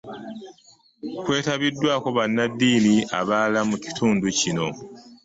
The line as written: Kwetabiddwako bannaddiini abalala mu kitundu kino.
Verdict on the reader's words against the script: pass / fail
pass